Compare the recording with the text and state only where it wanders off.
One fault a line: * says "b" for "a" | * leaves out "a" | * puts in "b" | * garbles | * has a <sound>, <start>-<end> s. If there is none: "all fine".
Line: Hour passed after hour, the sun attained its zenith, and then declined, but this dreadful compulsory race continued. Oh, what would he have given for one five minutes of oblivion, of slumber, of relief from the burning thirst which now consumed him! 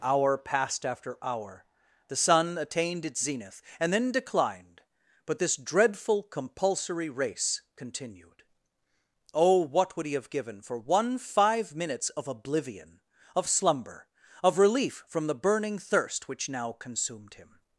all fine